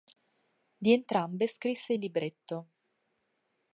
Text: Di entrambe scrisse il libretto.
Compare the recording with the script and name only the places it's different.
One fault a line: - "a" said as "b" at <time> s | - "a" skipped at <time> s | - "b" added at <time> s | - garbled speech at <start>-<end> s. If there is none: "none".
none